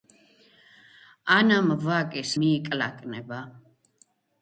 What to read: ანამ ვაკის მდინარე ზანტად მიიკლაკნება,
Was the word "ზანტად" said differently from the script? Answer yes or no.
yes